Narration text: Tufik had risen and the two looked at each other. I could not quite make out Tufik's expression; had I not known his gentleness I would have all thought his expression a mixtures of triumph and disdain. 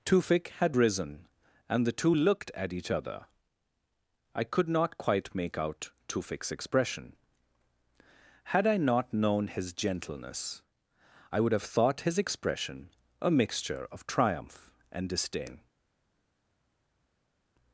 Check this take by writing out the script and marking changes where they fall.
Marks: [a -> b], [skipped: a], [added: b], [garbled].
Tufik had risen and the two looked at each other. I could not quite make out Tufik's expression; had I not known his gentleness I would have [skipped: all] thought his expression a [mixtures -> mixture] of triumph and disdain.